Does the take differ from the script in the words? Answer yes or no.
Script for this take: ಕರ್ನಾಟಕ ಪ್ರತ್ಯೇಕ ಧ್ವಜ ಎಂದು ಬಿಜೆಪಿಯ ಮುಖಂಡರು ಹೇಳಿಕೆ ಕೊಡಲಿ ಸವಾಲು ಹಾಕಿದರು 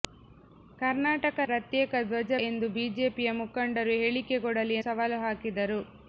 no